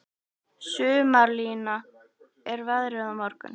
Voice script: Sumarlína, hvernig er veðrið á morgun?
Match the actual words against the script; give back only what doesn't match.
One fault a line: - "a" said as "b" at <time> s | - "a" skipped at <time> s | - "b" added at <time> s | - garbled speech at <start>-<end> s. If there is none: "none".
- "hvernig" skipped at 1.8 s